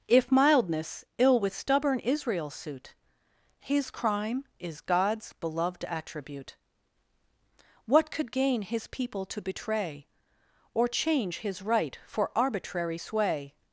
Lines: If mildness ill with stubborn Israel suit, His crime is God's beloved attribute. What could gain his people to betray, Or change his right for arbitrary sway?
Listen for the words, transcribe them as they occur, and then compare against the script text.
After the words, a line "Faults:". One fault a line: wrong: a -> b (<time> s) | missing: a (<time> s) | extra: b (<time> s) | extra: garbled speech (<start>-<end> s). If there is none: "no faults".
If mildness ill with stubborn Israel suit, His crime is God's beloved attribute. What could gain his people to betray, Or change his right for arbitrary sway?
Faults:
no faults